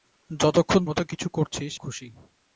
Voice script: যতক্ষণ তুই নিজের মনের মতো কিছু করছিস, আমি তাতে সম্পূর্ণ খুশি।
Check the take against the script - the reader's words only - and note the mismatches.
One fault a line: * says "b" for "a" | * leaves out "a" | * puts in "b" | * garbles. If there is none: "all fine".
* leaves out "তুই নিজের মনের"
* leaves out "আমি তাতে সম্পূর্ণ"